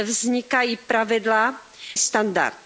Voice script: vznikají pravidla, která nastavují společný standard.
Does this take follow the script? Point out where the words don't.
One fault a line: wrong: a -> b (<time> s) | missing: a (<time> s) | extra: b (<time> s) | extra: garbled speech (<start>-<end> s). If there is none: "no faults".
missing: která nastavují společný (1.6 s)